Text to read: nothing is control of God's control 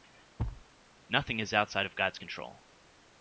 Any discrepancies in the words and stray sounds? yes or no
yes